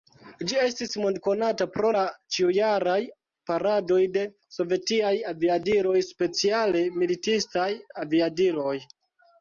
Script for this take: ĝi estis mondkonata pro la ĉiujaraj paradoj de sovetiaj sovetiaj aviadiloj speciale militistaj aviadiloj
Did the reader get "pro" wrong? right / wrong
right